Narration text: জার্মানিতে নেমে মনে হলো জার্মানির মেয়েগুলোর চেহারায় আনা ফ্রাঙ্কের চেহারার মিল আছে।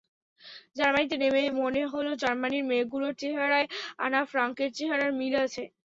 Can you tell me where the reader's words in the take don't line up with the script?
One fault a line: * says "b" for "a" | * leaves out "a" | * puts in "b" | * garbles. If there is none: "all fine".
all fine